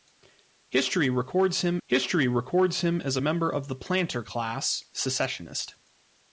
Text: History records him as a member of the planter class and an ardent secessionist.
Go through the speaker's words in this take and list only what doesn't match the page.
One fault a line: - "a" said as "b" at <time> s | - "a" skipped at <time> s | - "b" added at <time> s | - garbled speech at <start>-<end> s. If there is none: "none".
- "history records him" added at 1.8 s
- "and an ardent" skipped at 4.8 s